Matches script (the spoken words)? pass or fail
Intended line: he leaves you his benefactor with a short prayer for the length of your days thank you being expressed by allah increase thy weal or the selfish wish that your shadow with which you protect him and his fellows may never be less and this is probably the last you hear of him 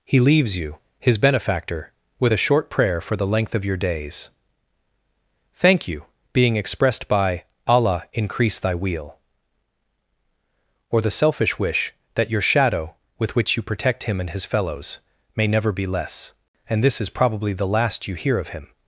pass